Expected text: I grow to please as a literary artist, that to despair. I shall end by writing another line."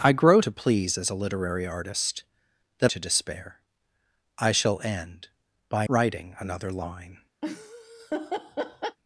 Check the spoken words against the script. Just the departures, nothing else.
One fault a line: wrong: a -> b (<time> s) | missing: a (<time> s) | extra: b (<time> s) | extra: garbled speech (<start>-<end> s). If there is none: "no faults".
no faults